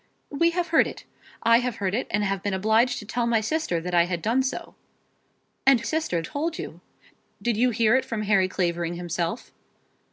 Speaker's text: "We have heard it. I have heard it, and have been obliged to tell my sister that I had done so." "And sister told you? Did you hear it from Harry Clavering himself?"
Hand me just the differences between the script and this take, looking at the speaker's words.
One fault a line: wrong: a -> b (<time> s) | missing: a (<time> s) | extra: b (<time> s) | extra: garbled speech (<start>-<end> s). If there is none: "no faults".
no faults